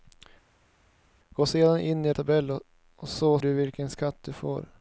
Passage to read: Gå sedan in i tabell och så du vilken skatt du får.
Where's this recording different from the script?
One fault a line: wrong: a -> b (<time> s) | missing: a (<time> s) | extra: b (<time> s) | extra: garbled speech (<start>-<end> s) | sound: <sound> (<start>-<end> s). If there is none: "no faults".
no faults